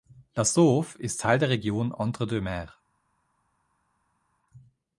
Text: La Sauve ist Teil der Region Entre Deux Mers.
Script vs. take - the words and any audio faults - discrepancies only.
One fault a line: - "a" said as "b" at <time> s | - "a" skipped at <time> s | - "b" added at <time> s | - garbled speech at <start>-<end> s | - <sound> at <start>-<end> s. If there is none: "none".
none